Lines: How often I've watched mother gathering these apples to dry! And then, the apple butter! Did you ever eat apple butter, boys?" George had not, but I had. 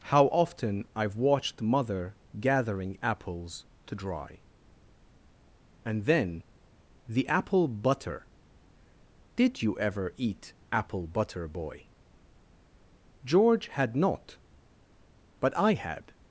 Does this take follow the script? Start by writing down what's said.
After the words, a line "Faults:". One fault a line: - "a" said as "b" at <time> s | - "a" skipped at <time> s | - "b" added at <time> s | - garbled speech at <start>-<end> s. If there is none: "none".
How often I've watched mother gathering apples to dry! And then, the apple butter! Did you ever eat apple butter, boy?" George had not, but I had.
Faults:
- "these" skipped at 3.0 s
- "boys" said as "boy" at 11.5 s